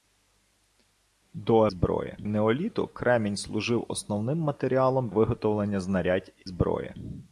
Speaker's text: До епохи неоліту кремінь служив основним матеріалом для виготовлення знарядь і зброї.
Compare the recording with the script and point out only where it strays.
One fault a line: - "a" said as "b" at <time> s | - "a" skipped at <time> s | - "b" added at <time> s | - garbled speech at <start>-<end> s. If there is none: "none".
- "епохи" said as "зброї" at 1.7 s
- "для" skipped at 5.1 s
- "і" skipped at 6.3 s